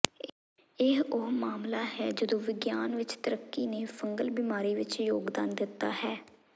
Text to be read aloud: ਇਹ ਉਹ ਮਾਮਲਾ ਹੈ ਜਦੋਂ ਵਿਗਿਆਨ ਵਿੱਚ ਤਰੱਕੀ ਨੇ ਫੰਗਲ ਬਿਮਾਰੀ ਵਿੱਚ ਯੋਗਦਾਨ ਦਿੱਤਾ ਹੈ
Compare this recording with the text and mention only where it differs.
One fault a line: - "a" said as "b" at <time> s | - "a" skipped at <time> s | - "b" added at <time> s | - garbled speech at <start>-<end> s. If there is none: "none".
none